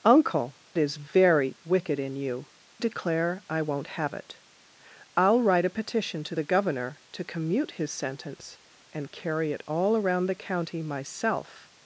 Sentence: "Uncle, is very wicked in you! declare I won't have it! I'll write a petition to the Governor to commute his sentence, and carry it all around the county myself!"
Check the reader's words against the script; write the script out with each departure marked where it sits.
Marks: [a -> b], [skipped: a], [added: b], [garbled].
"Uncle, is very wicked in you! declare I won't have it! I'll write a petition to the Governor to commute his sentence, and carry it all around the county myself!"